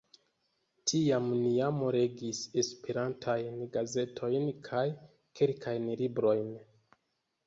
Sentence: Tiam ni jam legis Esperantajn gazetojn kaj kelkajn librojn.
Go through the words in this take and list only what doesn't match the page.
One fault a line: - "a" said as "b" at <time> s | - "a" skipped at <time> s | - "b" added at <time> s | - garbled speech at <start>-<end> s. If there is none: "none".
none